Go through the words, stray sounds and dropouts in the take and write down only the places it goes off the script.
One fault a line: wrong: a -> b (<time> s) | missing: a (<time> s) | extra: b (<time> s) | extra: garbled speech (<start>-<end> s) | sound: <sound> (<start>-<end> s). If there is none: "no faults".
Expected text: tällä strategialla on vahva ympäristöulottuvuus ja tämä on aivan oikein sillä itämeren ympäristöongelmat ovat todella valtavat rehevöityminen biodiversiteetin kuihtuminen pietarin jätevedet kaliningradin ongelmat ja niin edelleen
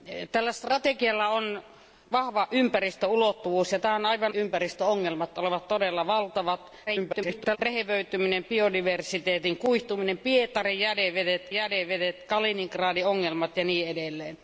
missing: oikein sillä itämeren (4.4 s)
extra: garbled speech (6.9-7.6 s)
extra: jätevedet (11.5 s)